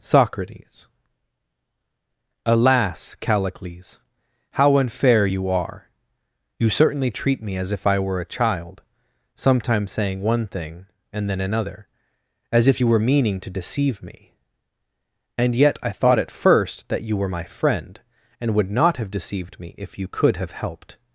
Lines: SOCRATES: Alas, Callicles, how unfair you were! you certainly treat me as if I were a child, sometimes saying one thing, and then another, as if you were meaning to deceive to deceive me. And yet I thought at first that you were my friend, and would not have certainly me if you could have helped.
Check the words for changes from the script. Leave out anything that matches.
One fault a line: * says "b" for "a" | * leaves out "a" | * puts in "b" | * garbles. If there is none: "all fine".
* says "are" for "were"
* leaves out "to deceive"
* says "deceived" for "certainly"